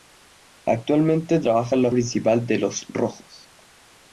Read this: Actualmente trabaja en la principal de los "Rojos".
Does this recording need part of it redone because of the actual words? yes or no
no